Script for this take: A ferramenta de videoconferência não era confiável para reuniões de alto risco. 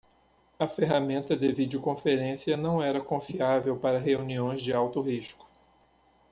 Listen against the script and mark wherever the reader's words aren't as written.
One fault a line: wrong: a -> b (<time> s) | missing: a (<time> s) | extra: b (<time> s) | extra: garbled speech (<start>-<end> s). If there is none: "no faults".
no faults